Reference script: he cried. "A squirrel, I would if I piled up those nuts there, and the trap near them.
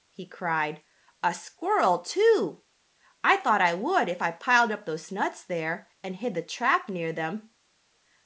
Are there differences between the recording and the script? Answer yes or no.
yes